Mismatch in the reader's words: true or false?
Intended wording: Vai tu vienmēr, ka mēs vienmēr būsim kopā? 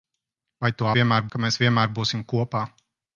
false